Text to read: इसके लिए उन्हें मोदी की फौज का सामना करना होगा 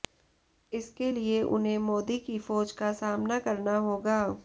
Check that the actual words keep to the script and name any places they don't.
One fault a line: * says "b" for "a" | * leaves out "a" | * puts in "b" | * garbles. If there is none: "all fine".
all fine